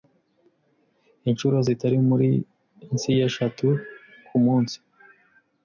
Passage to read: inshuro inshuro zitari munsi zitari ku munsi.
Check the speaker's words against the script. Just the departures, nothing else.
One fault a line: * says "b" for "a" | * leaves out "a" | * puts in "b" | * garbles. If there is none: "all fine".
* leaves out "inshuro"
* says "y'eshatu" for "zitari"